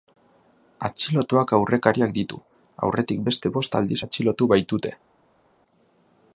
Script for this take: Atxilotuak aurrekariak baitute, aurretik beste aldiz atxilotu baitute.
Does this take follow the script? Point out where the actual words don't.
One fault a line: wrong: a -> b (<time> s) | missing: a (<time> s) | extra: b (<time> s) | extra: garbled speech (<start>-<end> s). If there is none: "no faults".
wrong: baitute -> ditu (2.1 s)
extra: bost (3.6 s)